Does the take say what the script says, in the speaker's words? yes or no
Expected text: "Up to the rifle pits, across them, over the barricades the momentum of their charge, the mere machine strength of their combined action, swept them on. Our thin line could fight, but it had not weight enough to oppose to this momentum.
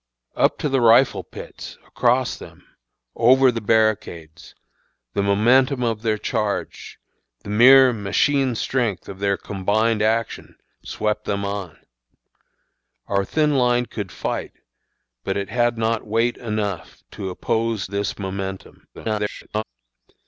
no